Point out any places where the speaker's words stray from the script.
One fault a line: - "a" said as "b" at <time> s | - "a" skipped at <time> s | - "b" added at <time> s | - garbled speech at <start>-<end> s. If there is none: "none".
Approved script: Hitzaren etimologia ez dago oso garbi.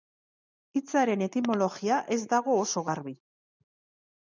none